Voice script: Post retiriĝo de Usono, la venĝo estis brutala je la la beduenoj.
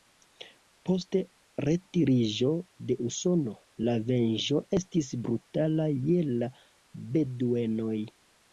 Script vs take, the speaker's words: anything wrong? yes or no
yes